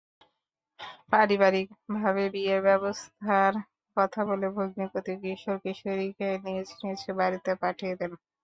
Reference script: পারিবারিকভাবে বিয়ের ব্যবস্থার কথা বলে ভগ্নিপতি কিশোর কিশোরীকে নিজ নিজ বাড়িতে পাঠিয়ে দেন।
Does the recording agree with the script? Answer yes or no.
yes